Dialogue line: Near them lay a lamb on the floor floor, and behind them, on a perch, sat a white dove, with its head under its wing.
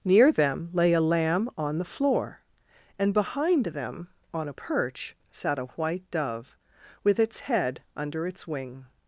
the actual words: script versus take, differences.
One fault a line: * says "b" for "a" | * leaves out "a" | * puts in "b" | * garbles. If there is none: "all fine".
* leaves out "floor"